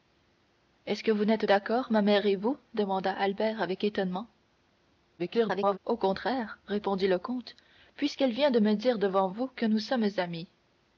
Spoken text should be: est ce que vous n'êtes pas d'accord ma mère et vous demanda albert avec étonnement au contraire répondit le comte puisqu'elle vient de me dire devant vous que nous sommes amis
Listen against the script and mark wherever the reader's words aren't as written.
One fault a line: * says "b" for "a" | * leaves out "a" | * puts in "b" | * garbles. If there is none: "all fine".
* leaves out "pas"
* garbles